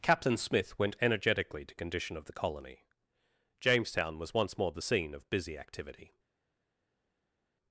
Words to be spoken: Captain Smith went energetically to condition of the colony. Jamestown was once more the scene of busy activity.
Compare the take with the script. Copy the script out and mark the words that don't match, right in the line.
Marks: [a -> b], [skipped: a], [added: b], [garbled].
Captain Smith went energetically to condition of the colony. Jamestown was once more the scene of busy activity.